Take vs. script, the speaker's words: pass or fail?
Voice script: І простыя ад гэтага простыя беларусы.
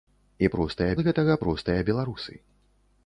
pass